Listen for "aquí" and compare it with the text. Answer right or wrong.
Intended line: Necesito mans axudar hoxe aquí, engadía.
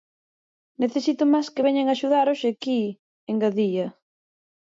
right